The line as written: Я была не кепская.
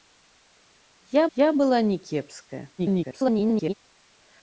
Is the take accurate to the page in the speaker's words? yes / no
no